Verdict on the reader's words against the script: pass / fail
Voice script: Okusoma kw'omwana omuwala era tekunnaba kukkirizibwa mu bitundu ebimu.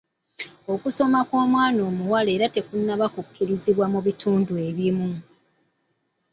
pass